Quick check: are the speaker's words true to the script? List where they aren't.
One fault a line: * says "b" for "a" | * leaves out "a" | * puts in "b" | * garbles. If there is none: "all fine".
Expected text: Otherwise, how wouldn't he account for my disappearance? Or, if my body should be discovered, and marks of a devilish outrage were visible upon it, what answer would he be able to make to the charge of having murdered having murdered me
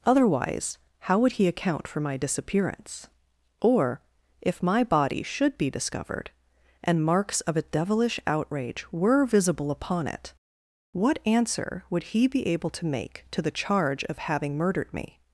* says "would" for "wouldn't"
* leaves out "having murdered"